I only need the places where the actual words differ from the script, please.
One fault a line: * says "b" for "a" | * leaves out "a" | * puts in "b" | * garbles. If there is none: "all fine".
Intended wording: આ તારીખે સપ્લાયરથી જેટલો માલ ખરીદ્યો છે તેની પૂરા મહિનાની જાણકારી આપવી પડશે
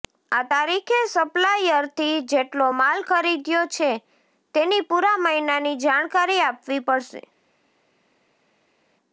all fine